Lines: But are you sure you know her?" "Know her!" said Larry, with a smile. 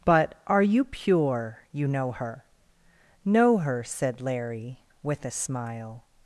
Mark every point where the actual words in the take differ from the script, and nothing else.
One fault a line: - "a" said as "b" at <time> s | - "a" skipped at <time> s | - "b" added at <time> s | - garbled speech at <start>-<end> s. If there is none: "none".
- "sure" said as "pure" at 0.8 s